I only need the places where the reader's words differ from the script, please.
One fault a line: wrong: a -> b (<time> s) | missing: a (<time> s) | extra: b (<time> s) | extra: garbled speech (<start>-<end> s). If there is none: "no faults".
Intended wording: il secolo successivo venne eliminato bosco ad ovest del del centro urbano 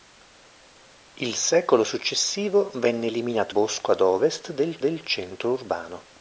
no faults